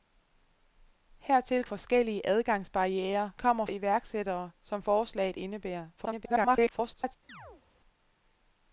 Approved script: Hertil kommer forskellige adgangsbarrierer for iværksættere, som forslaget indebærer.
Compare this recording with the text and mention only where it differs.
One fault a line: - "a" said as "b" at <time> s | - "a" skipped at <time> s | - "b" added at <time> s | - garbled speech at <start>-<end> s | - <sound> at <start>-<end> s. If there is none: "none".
- "kommer" skipped at 1.6 s
- "for" said as "kommer" at 3.3 s
- garbled speech at 6.0-7.2 s
- chirp at 7.3-7.6 s